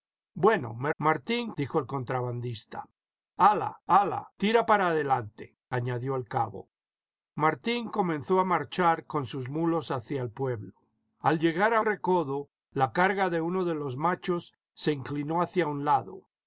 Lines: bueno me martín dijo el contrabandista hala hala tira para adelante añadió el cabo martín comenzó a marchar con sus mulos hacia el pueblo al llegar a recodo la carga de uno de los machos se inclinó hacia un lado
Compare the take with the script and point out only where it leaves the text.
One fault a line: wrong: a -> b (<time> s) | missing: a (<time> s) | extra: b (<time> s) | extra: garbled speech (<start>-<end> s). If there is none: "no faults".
no faults